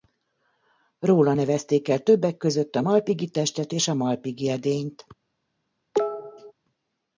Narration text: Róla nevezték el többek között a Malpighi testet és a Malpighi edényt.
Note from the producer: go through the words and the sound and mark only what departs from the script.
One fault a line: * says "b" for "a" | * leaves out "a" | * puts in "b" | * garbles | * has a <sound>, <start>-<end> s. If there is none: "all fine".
* has a cough, 5.9-6.5 s